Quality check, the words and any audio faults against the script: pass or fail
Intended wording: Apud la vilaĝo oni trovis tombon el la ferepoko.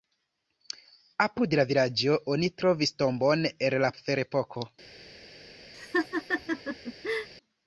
fail